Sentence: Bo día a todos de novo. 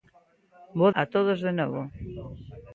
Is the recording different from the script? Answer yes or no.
yes